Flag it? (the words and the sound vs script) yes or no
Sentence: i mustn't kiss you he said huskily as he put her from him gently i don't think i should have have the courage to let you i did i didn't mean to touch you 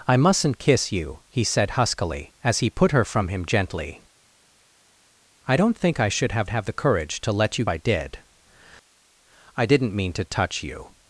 no